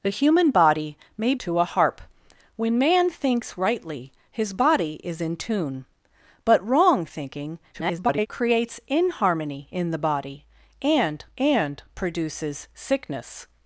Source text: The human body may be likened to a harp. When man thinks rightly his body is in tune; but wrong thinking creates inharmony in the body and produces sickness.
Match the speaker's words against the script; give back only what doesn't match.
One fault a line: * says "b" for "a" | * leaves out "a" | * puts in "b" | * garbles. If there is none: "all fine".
* leaves out "be likened"
* garbles
* puts in "and"